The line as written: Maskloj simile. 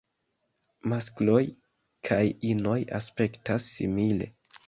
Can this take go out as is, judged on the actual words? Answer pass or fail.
fail